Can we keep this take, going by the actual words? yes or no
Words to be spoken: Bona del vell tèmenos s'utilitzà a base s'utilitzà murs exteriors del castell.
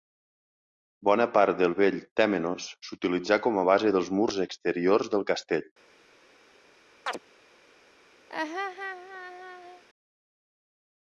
no